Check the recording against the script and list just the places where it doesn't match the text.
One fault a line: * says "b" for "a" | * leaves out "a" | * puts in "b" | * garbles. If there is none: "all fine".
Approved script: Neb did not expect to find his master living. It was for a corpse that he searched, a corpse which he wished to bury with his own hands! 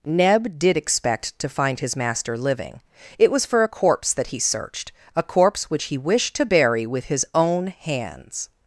* leaves out "not"